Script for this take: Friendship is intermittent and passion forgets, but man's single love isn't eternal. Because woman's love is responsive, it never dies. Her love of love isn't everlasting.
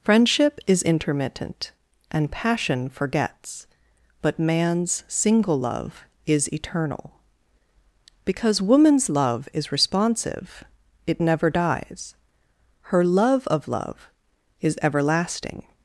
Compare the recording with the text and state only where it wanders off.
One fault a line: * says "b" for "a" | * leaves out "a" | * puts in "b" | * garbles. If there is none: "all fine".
* says "is" for "isn't"
* says "is" for "isn't"